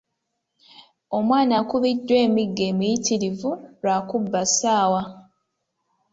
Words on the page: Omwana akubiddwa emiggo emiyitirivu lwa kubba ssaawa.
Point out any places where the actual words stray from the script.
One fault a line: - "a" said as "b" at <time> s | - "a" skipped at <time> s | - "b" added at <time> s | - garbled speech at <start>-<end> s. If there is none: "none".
none